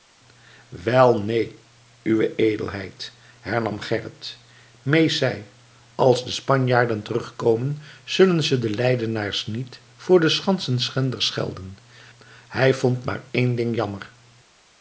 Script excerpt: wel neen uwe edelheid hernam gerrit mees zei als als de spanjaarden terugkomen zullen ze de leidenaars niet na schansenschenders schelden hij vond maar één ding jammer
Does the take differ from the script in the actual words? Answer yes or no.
yes